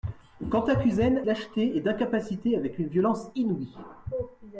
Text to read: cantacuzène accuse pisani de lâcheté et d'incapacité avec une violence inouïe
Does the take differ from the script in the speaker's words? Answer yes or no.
yes